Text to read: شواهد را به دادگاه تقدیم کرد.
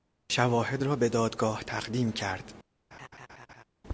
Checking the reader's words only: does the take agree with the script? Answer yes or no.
yes